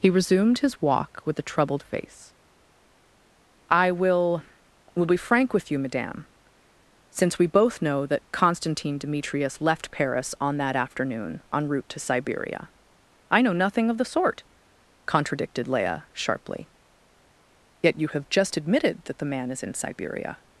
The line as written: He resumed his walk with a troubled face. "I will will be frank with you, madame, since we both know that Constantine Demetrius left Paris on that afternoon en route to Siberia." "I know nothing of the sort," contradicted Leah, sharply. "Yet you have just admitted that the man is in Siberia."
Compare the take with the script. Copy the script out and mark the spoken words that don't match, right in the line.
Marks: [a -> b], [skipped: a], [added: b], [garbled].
He resumed his walk with a troubled face. "I will will be frank with you, madame, since we both know that Constantine Demetrius left Paris on that afternoon en route to Siberia." "I know nothing of the sort," contradicted Leah, sharply. "Yet you have just admitted that the man is in Siberia."